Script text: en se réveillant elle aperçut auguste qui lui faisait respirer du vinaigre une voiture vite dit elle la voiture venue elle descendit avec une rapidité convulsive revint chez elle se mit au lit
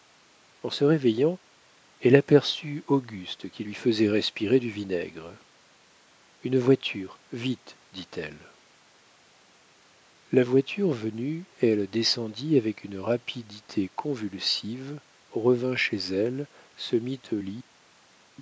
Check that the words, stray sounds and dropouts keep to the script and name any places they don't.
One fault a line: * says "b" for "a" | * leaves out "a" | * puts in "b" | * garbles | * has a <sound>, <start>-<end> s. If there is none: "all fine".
all fine